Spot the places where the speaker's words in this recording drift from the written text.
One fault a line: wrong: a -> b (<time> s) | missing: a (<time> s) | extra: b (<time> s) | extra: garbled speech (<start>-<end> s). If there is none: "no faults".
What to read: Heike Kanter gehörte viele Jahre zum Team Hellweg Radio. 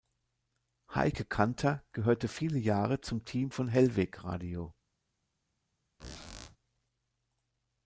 extra: von (3.5 s)